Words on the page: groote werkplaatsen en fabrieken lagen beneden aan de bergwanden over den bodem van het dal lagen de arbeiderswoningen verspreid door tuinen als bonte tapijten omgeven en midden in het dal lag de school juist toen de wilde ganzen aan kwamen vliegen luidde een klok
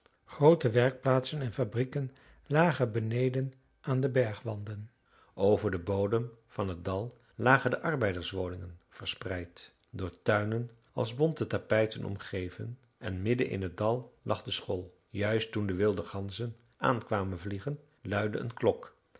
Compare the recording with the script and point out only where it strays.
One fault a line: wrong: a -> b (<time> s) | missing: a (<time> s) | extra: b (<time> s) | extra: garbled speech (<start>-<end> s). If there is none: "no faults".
no faults